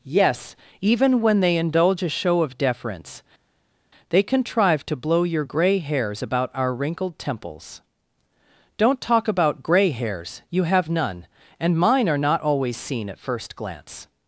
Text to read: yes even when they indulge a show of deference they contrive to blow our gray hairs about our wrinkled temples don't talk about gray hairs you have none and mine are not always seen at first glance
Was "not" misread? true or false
false